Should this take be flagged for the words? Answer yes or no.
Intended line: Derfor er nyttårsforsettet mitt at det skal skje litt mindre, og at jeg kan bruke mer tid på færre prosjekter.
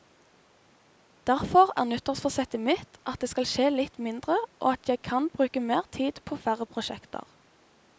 no